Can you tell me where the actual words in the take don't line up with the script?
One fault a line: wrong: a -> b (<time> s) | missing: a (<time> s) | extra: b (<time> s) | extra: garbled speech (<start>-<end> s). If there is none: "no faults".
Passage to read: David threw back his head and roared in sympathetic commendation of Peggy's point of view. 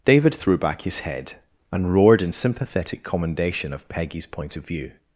no faults